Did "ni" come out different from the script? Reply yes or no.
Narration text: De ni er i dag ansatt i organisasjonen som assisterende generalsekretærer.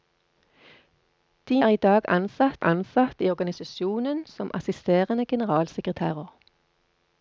yes